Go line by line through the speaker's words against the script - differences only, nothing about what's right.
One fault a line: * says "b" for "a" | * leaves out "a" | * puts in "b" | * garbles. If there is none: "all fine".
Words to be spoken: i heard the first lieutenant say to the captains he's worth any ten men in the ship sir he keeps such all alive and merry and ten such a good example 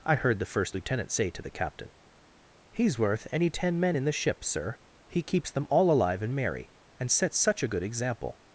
* says "captain" for "captains"
* says "them" for "such"
* says "sets" for "ten"